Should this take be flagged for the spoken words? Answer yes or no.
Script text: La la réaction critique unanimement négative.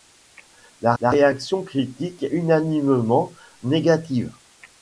no